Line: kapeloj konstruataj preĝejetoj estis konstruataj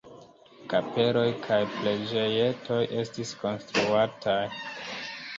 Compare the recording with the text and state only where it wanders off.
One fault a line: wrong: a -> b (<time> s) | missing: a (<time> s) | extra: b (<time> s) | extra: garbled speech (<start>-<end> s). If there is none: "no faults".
wrong: konstruataj -> kaj (1.5 s)